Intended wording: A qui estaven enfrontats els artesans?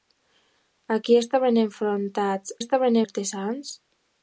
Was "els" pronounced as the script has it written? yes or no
no